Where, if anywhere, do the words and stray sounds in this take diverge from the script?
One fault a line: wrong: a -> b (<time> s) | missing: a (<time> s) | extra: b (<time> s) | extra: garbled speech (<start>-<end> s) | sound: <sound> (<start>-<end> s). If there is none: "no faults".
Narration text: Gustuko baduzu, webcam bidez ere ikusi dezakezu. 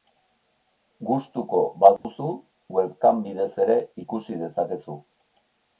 sound: dropout (2.0-2.0 s)